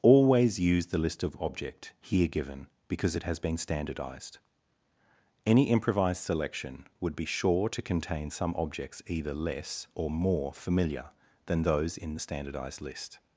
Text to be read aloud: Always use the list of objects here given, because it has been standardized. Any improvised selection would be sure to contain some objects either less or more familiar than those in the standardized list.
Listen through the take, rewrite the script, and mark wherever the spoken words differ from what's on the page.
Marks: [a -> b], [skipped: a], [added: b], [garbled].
Always use the list of [objects -> object] here given, because it has been standardized. Any improvised selection would be sure to contain some objects either less or more familiar than those in the standardized list.